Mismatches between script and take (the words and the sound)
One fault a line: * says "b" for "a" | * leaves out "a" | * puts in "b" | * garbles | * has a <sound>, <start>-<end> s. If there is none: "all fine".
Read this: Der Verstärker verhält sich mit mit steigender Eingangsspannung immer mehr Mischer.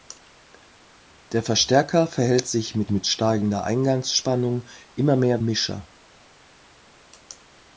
all fine